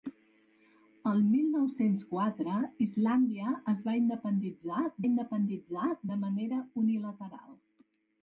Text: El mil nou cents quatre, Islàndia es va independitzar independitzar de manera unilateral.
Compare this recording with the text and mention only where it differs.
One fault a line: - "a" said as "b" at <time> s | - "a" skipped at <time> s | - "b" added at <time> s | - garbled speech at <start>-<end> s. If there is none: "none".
none